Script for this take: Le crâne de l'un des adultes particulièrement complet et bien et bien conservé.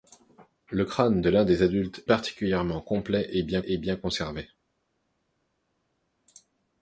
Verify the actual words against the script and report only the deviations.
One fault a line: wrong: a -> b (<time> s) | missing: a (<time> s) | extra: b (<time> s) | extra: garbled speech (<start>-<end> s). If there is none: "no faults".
no faults